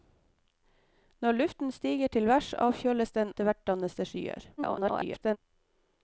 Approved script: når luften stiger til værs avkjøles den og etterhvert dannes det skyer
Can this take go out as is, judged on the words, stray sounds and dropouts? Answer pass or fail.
fail